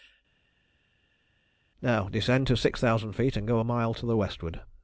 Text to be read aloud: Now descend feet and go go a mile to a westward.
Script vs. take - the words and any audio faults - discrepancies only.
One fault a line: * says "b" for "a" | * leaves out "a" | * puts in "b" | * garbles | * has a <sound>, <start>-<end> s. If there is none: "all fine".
* puts in "to six thousand"
* leaves out "go"
* says "the" for "a"